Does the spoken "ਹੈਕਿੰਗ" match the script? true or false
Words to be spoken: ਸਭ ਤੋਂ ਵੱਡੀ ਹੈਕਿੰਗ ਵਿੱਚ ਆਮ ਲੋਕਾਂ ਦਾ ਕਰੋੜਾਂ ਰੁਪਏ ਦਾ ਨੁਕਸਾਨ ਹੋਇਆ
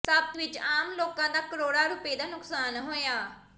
false